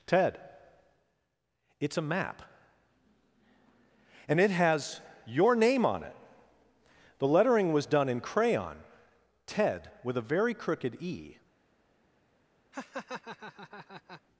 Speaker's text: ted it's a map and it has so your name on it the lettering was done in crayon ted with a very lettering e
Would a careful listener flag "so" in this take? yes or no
yes